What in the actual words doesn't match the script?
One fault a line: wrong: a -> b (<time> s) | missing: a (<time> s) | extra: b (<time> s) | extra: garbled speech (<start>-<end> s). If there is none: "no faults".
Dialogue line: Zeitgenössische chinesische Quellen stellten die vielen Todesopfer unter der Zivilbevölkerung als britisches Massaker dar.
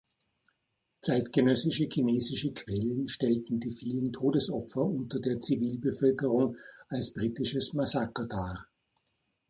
no faults